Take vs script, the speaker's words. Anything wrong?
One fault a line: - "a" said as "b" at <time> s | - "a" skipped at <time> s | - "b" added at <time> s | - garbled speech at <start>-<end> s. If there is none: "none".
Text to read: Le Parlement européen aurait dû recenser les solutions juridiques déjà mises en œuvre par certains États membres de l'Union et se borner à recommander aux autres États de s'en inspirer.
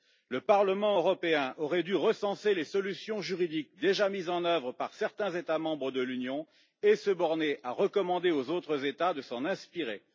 none